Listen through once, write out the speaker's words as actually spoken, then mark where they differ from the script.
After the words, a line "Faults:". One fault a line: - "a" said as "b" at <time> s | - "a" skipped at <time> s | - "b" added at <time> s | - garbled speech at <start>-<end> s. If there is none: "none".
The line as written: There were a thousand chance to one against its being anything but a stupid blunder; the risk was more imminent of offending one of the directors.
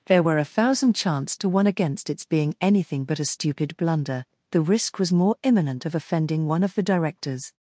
There were a thousand chance to one against its being anything but a stupid blunder; the risk was more imminent of offending one of the directors.
Faults:
none